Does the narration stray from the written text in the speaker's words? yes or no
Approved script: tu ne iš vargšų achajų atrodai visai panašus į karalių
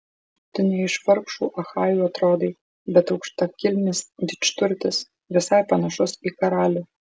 yes